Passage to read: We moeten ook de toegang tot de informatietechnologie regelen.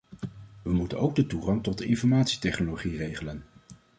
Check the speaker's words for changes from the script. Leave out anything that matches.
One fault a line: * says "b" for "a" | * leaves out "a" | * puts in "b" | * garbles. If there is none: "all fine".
all fine